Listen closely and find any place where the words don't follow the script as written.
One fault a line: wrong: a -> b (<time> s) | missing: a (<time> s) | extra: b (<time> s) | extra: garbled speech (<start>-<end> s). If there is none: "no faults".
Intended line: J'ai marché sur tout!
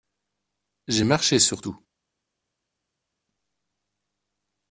no faults